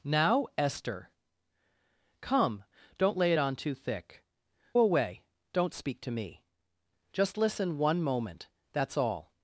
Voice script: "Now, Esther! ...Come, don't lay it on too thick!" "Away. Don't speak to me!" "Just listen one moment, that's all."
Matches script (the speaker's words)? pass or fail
pass